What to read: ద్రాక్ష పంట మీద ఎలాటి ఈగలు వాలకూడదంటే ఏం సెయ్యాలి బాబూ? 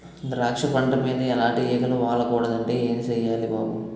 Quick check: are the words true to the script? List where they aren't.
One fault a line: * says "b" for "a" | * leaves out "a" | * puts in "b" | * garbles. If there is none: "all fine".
all fine